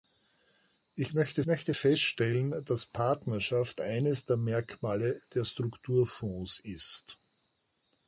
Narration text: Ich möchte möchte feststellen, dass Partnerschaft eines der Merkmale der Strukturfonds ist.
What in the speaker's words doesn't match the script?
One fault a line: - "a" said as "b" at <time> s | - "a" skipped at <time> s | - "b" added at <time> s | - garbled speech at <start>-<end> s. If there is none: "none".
none